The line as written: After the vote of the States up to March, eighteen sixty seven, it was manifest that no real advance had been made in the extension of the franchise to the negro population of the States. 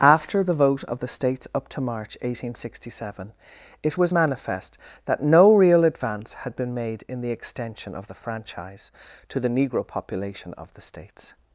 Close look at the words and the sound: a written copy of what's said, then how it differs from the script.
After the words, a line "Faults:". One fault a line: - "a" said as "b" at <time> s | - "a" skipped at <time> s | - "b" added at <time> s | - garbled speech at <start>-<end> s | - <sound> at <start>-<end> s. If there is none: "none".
After the vote of the States up to March, eighteen sixty seven, it was manifest that no real advance had been made in the extension of the franchise to the negro population of the States.
Faults:
none